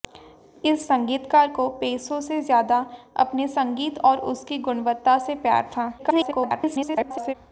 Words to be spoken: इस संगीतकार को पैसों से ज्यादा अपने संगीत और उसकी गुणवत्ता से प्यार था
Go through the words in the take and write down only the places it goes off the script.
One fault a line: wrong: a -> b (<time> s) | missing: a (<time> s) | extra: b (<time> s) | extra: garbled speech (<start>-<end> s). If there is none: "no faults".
extra: garbled speech (6.0-7.3 s)